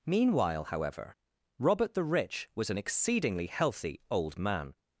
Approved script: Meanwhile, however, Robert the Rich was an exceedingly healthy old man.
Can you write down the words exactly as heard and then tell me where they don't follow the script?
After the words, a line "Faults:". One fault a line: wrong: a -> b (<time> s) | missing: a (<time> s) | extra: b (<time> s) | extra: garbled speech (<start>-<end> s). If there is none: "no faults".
Meanwhile, however, Robert the Rich was an exceedingly healthy old man.
Faults:
no faults